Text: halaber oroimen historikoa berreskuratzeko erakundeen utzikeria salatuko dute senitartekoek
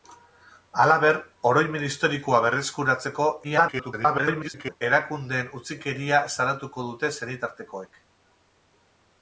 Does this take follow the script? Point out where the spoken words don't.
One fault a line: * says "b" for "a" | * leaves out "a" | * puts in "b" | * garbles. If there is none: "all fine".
* garbles